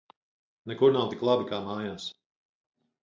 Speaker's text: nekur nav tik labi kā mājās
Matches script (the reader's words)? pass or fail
pass